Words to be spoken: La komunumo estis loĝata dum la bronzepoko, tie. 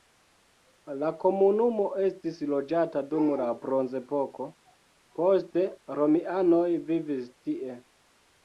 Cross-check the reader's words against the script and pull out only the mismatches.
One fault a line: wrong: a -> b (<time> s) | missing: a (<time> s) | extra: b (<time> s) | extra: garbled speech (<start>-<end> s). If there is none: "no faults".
extra: poste romianoj vivis (5.2 s)